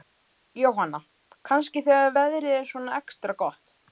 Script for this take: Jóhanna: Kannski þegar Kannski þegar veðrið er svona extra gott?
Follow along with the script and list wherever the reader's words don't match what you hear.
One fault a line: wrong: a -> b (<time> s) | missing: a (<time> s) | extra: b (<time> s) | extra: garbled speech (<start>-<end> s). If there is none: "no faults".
missing: Kannski þegar (2.2 s)